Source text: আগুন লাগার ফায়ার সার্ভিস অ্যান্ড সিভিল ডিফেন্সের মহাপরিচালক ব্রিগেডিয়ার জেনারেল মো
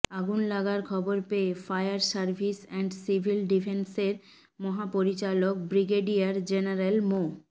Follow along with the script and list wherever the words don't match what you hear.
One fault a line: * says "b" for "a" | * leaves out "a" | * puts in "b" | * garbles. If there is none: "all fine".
* puts in "খবর পেয়ে"